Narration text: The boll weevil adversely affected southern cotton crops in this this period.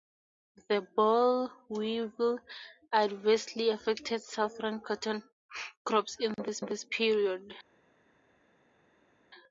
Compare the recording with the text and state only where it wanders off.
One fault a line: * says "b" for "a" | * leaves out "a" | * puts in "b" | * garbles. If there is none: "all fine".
all fine